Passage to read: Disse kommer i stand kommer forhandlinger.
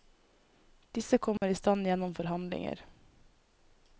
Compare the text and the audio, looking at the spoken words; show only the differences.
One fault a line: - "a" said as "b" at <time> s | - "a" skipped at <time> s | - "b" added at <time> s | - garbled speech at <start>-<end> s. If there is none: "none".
- "kommer" said as "gjennom" at 1.9 s